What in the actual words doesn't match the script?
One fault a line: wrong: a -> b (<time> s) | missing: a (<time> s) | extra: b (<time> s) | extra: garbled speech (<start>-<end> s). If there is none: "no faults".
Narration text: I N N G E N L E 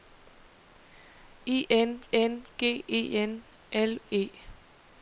no faults